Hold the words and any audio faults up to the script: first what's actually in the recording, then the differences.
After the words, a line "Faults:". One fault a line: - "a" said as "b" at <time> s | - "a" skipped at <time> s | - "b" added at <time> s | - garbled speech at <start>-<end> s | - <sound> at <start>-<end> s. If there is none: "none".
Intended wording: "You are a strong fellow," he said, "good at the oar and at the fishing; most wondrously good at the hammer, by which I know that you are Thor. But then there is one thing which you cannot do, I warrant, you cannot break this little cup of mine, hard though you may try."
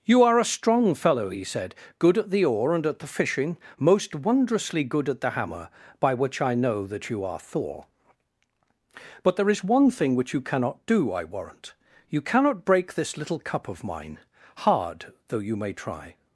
"You are a strong fellow," he said, "good at the oar and at the fishing; most wondrously good at the hammer, by which I know that you are Thor. But there is one thing which you cannot do, I warrant, you cannot break this little cup of mine, hard though you may try."
Faults:
- "then" skipped at 9.3 s